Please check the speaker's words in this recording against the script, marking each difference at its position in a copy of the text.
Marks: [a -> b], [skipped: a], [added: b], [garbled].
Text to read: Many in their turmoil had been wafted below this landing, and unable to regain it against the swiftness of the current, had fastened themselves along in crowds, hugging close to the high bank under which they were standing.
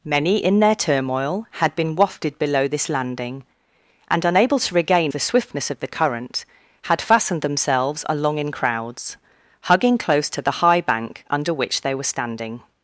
Many in their turmoil had been wafted below this landing, and unable to regain [skipped: it against] the swiftness of the current, had fastened themselves along in crowds, hugging close to the high bank under which they were standing.